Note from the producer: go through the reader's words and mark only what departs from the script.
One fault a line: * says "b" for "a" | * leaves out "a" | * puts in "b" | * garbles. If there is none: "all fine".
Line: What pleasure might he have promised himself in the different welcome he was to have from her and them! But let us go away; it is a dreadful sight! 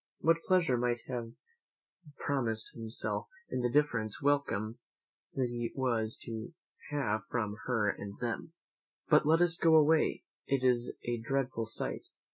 all fine